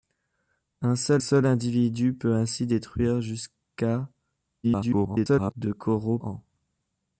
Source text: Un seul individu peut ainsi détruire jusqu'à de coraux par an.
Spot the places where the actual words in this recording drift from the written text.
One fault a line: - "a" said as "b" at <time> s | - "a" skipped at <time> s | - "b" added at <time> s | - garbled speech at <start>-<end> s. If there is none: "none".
- "seul" added at 1.2 s
- garbled speech at 4.6-5.5 s
- "par" skipped at 6.2 s